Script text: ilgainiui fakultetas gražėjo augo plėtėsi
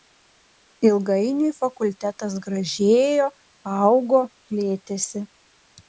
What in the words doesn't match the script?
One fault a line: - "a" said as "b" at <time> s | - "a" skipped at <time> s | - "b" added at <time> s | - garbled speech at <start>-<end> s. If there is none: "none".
none